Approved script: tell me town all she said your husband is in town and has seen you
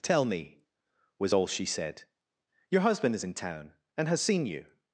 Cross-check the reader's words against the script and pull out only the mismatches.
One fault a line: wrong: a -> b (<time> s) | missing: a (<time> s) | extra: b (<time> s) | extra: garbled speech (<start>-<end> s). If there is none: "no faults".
wrong: town -> was (1.2 s)